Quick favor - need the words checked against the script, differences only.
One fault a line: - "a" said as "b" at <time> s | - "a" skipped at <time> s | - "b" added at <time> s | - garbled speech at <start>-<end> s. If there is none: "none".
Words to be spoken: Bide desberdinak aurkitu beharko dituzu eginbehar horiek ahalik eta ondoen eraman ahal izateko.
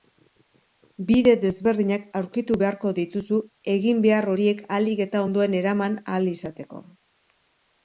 none